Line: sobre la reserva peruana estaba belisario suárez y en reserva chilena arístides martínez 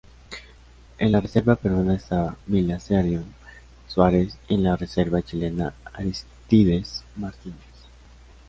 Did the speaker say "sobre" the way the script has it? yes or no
no